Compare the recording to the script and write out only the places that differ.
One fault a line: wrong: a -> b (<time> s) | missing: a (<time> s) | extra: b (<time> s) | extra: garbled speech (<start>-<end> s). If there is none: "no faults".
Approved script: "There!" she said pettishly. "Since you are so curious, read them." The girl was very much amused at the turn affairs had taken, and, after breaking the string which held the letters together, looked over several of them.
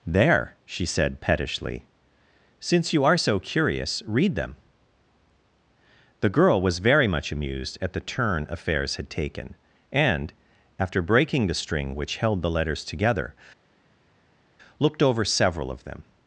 no faults